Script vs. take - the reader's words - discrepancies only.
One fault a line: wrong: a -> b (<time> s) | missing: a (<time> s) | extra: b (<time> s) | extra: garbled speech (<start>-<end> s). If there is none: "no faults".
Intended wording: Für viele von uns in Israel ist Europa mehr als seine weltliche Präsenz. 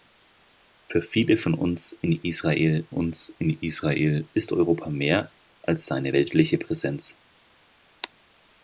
extra: uns in Israel (2.9 s)